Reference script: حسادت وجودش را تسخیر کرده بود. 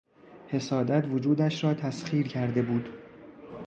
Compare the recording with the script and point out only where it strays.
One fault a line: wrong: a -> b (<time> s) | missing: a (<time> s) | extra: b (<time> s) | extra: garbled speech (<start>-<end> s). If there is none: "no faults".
no faults